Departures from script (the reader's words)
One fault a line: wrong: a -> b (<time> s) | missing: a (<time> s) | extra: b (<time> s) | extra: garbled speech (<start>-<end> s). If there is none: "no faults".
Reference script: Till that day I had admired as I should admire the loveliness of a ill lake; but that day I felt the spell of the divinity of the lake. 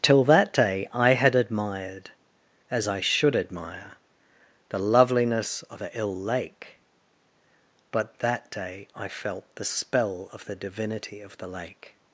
no faults